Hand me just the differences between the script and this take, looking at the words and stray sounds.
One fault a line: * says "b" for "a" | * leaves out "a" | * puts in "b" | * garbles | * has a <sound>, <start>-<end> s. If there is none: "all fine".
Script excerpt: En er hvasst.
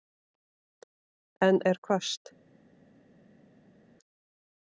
all fine